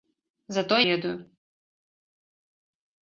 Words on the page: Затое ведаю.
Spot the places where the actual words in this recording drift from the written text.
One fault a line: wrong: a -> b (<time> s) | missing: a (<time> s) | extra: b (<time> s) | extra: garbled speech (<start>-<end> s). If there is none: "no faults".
no faults